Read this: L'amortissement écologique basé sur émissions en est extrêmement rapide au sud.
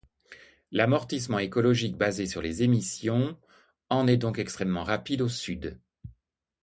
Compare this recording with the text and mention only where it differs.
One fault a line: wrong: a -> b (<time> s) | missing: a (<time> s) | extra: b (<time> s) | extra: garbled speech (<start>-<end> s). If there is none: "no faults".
extra: les (2.4 s)
extra: donc (4.2 s)